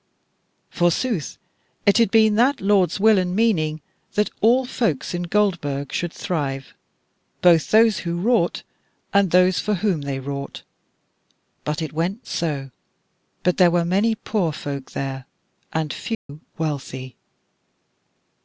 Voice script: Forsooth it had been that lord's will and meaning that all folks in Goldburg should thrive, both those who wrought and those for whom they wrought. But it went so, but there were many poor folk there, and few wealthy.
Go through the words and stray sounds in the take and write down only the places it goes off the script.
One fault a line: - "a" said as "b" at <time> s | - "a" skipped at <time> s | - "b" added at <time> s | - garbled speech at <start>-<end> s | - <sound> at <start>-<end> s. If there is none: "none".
- dropout at 16.1-16.3 s